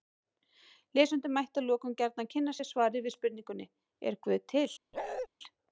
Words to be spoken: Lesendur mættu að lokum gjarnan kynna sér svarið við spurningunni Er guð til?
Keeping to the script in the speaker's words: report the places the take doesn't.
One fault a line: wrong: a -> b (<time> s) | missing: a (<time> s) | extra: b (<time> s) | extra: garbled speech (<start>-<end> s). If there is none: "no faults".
no faults